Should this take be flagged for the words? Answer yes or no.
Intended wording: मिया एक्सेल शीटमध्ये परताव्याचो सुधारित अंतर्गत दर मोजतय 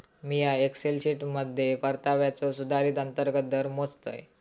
no